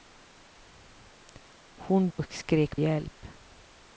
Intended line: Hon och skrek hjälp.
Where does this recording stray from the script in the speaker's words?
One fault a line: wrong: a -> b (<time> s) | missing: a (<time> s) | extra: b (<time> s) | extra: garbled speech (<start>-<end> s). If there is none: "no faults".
no faults